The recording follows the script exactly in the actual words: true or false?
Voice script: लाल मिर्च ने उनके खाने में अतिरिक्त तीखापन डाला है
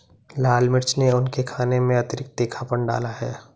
true